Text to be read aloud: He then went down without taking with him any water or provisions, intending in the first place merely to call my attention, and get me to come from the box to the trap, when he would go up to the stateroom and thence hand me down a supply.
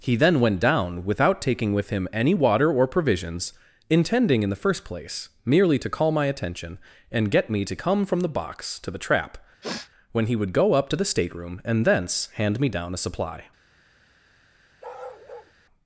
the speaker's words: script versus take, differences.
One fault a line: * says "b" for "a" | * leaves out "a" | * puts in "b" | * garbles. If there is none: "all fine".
all fine